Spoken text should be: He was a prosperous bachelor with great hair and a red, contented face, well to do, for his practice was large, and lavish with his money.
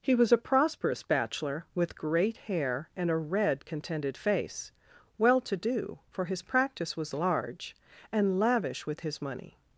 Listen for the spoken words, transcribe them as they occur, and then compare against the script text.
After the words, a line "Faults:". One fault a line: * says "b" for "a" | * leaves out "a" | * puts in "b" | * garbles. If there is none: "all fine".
He was a prosperous bachelor with great hair and a red, contented face, well to do, for his practice was large, and lavish with his money.
Faults:
all fine